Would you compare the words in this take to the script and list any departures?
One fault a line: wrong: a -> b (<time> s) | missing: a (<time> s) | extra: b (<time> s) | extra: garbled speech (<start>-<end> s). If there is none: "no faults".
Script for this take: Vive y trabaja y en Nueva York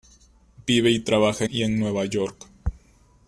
no faults